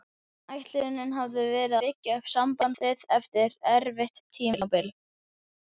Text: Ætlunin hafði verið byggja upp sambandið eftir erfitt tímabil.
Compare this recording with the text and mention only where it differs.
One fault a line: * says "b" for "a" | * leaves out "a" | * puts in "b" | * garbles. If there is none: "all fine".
all fine